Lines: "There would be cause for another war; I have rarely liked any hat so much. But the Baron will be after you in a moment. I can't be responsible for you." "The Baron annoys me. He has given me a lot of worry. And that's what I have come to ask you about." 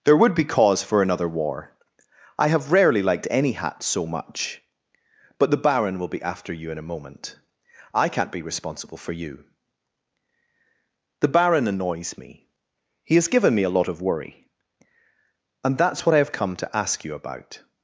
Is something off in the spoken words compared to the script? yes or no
no